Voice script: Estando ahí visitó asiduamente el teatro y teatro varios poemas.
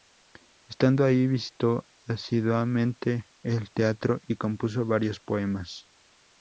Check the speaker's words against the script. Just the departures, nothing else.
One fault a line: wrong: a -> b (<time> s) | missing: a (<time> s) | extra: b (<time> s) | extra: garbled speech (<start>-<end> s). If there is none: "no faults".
wrong: teatro -> compuso (4.3 s)